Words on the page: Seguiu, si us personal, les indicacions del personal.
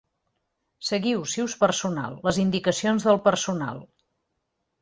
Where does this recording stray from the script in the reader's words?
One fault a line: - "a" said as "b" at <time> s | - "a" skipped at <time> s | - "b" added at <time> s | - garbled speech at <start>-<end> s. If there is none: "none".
none